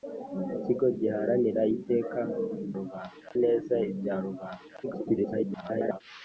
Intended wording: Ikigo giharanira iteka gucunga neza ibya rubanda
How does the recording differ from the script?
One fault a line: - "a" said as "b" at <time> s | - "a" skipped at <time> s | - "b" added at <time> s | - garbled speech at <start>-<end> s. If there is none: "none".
- "gucunga" said as "rubanda" at 2.8 s
- garbled speech at 4.8-6.0 s